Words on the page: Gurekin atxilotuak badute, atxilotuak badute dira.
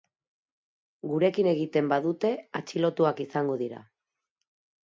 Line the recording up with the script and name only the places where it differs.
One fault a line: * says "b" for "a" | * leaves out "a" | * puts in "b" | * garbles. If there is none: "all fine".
* says "egiten" for "atxilotuak"
* says "izango" for "badute"